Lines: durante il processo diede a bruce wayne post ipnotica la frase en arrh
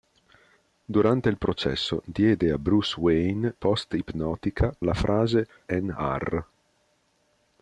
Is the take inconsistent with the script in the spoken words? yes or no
no